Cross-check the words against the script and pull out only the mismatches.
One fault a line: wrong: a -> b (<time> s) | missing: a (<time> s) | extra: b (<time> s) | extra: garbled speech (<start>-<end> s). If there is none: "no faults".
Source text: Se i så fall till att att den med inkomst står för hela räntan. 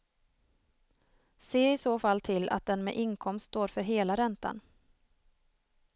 missing: att (2.7 s)